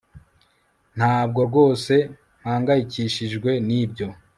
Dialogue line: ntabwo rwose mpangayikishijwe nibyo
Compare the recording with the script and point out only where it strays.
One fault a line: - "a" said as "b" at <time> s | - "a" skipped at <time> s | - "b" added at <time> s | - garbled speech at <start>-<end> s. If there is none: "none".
none